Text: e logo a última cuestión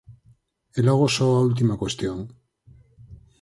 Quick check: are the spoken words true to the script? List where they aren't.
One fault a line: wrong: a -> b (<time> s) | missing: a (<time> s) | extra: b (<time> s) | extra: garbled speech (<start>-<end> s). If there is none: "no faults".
extra: só (1.2 s)